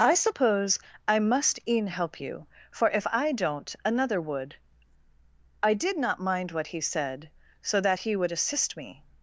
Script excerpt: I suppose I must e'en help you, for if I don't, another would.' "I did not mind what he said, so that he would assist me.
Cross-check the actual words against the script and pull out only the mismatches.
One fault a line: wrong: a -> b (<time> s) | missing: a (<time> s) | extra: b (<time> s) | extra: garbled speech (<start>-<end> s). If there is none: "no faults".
no faults